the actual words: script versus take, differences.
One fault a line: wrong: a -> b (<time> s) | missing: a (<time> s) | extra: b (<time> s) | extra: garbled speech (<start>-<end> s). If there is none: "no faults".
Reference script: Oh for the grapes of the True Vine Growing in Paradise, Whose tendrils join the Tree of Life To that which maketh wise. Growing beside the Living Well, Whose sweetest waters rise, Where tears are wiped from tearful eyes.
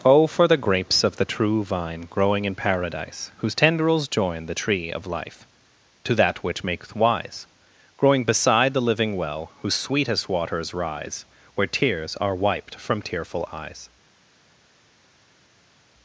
no faults